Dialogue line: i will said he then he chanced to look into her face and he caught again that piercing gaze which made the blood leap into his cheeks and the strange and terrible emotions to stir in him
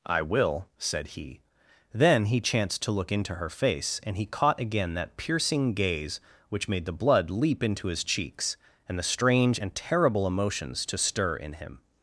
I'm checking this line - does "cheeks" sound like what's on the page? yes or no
yes